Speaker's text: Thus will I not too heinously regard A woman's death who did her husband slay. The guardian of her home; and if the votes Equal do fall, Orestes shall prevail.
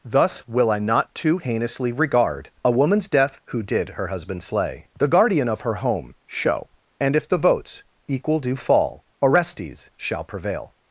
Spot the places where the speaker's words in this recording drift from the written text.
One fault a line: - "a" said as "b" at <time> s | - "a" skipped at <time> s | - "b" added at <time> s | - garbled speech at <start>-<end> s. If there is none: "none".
- "show" added at 6.3 s